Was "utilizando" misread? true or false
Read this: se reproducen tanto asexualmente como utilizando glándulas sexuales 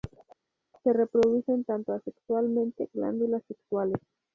true